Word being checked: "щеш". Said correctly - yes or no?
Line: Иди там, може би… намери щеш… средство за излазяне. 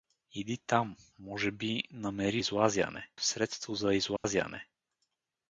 no